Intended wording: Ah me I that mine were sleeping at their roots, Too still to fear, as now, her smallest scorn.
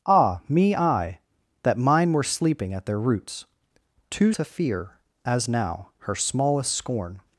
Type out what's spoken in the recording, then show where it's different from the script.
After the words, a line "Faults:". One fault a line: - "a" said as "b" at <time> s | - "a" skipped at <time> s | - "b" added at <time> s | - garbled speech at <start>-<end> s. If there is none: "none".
Ah me I that mine were sleeping at their roots, Too to fear, as now, her smallest scorn.
Faults:
- "still" skipped at 4.3 s